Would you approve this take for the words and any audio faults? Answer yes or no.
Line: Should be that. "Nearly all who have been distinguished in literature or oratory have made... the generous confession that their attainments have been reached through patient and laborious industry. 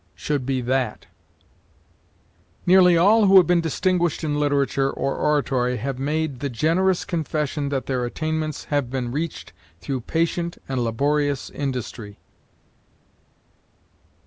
yes